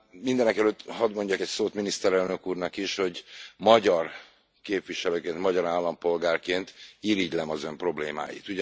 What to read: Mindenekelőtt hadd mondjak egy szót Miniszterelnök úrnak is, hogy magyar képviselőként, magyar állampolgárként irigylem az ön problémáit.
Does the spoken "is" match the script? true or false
true